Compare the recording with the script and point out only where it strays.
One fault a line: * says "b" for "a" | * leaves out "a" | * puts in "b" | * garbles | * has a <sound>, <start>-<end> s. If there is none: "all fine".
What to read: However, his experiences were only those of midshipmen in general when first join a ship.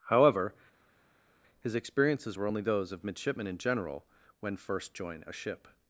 all fine